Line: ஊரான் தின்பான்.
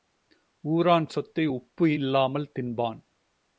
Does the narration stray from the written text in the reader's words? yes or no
yes